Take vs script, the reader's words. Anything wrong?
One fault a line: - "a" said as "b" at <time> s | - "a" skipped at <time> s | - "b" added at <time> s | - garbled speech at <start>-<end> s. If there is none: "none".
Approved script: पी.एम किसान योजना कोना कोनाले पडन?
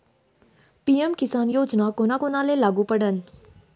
- "लागू" added at 2.6 s